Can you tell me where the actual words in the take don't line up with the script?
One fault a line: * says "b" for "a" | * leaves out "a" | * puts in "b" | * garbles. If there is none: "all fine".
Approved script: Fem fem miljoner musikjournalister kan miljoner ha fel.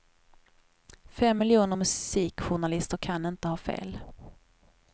* leaves out "fem"
* says "inte" for "miljoner"